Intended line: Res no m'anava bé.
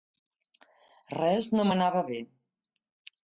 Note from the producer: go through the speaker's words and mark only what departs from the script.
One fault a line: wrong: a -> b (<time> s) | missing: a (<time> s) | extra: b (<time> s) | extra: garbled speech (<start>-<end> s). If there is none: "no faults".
no faults